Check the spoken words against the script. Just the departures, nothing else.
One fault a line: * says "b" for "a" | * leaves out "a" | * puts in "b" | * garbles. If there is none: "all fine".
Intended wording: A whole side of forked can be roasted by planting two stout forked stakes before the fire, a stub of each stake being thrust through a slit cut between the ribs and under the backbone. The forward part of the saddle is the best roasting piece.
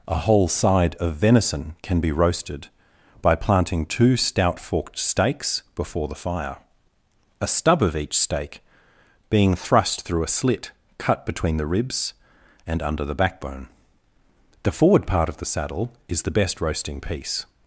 * says "venison" for "forked"